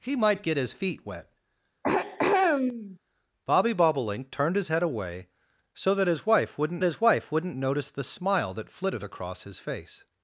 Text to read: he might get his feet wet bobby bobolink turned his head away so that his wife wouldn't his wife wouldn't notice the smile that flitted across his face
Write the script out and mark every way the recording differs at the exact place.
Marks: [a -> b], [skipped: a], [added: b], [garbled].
he might get his feet wet bobby bobolink turned his head away so that his wife wouldn't his wife wouldn't notice the smile that flitted across his face